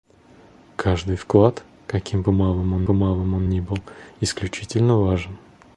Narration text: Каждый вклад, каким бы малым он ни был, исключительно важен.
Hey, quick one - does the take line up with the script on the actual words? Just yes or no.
no